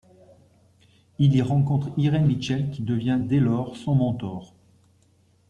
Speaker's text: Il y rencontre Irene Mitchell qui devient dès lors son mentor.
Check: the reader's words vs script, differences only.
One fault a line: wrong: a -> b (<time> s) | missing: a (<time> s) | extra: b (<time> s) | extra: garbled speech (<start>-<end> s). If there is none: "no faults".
no faults